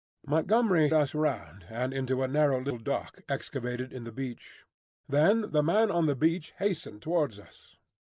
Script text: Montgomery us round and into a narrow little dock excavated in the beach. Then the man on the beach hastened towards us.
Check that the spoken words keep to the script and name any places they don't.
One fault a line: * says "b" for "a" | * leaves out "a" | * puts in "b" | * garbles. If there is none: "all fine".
all fine